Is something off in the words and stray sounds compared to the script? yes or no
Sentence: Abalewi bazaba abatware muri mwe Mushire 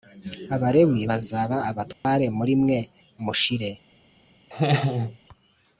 yes